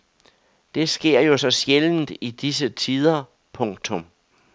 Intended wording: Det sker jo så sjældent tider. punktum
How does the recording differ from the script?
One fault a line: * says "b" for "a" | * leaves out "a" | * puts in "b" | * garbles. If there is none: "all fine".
* puts in "i disse"